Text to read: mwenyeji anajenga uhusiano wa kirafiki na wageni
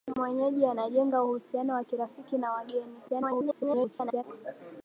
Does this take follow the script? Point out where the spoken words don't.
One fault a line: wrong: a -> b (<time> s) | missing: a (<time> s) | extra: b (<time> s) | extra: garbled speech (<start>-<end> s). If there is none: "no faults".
extra: garbled speech (3.1-4.2 s)